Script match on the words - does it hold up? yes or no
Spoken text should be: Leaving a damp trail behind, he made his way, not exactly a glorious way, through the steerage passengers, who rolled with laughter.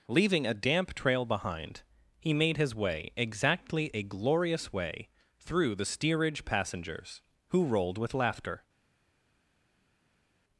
no